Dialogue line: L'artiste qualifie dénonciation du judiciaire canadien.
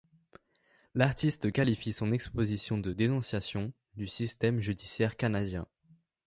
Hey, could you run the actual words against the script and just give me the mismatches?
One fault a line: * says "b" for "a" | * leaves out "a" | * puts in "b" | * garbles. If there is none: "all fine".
* puts in "son exposition de"
* puts in "système"